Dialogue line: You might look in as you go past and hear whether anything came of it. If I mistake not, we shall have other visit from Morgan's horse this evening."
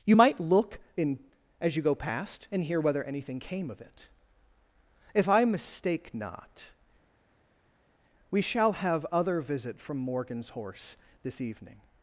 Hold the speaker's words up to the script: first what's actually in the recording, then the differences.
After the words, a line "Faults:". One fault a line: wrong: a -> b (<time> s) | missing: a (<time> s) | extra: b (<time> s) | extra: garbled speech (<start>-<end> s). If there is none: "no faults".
You might look in as you go past and hear whether anything came of it. If I mistake not, we shall have other visit from Morgan's horse this evening."
Faults:
no faults